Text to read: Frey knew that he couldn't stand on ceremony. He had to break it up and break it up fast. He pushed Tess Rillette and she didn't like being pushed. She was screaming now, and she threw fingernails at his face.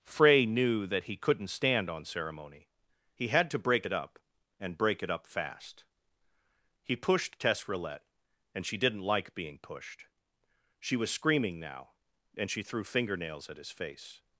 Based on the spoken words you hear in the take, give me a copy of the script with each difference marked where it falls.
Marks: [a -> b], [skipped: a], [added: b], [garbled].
Frey knew that he couldn't stand on ceremony. He had to break it up and break it up fast. He pushed Tess Rillette and she didn't like being pushed. She was screaming now, and she threw fingernails at his face.